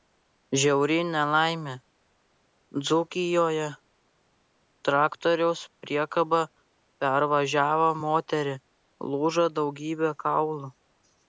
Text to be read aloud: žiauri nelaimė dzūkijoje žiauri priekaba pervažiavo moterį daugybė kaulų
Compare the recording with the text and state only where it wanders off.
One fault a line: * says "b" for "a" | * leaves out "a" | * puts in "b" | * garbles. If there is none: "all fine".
* says "traktoriaus" for "žiauri"
* puts in "lūžo"